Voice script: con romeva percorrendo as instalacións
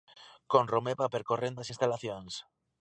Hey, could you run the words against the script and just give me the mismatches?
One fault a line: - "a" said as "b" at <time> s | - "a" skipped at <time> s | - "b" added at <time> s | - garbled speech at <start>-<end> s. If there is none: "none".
none